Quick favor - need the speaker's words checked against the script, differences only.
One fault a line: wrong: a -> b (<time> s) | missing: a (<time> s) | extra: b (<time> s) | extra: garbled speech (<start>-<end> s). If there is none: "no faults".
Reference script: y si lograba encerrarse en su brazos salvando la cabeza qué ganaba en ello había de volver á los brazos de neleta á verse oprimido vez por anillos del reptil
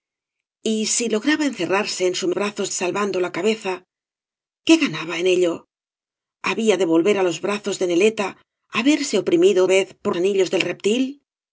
no faults